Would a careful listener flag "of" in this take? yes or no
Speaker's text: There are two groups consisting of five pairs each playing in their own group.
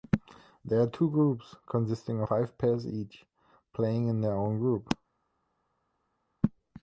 yes